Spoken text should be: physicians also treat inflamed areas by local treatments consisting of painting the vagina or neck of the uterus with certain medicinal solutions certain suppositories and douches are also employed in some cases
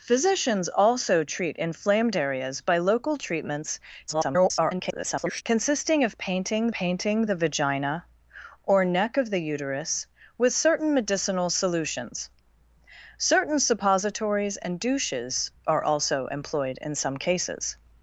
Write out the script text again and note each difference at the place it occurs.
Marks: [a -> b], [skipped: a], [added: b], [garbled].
physicians also treat inflamed areas by local treatments [garbled] consisting of painting [added: painting] the vagina or neck of the uterus with certain medicinal solutions certain suppositories and douches are also employed in some cases